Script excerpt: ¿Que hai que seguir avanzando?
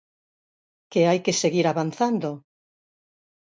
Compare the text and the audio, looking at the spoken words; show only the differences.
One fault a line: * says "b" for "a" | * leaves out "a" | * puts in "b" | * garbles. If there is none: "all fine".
all fine